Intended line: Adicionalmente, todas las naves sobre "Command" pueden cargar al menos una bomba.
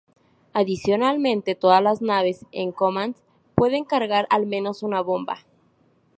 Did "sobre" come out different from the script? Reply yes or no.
yes